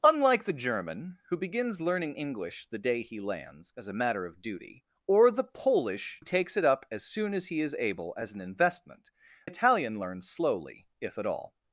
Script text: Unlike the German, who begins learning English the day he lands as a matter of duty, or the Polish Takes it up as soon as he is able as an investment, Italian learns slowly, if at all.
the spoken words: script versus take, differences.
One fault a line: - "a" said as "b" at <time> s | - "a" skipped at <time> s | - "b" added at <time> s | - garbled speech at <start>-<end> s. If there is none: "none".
none